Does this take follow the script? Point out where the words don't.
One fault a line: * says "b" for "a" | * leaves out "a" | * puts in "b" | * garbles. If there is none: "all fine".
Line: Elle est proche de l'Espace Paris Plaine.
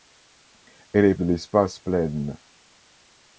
* leaves out "proche"
* leaves out "Paris"